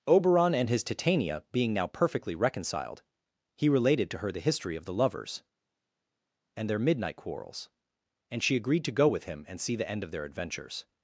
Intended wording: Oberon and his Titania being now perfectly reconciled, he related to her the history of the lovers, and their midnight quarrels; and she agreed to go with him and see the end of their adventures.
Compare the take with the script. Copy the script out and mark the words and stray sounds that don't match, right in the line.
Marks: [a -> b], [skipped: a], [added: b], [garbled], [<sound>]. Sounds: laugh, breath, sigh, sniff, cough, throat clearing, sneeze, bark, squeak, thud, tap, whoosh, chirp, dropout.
Oberon and his Titania being now perfectly reconciled, he related to her the history of the lovers, and their midnight quarrels; and she agreed to go with him and see the end of their adventures.